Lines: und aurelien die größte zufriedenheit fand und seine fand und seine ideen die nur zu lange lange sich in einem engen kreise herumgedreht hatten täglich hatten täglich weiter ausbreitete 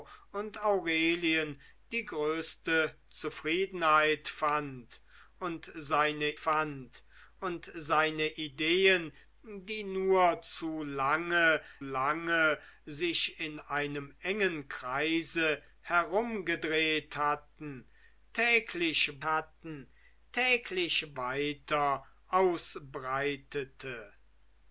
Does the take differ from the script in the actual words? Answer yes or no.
no